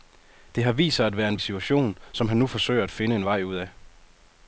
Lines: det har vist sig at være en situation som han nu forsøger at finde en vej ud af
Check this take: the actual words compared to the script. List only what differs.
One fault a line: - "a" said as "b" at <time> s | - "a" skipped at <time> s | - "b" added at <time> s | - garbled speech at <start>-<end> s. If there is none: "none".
none